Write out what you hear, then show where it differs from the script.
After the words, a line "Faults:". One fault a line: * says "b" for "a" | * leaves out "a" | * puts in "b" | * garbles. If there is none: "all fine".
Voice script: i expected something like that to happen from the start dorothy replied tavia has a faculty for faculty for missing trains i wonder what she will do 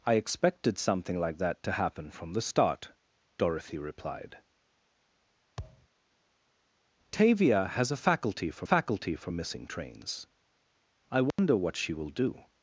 i expected something like that to happen from the start dorothy replied tavia has a faculty for faculty for missing trains i wonder what she will do
Faults:
all fine